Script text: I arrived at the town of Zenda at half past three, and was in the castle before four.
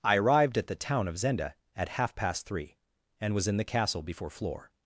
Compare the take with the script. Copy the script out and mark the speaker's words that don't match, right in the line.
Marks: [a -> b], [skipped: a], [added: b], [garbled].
I arrived at the town of Zenda at half past three, and was in the castle before [four. -> floor]